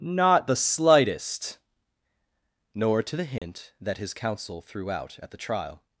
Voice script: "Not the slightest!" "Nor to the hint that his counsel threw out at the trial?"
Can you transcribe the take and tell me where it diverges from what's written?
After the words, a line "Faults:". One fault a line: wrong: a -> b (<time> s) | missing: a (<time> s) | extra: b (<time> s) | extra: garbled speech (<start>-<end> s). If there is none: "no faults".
"Not the slightest!" "Nor to the hint that his counsel threw out at the trial?"
Faults:
no faults